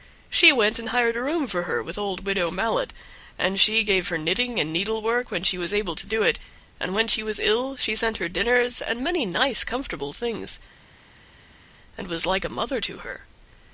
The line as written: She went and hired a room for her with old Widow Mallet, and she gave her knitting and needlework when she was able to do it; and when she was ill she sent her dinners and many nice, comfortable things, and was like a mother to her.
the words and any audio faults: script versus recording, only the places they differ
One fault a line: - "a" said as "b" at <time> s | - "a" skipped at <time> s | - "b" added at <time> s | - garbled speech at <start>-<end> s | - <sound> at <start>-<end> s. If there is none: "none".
none